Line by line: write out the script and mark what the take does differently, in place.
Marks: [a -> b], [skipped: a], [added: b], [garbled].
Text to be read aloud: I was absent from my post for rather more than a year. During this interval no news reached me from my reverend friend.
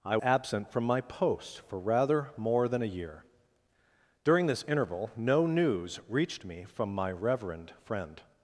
I [skipped: was] absent from my post for rather more than a year. During this interval no news reached me from my reverend friend.